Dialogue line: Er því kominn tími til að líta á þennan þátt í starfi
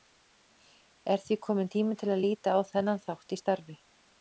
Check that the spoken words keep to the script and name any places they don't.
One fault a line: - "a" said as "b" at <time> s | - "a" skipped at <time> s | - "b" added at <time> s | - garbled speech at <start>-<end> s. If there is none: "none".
none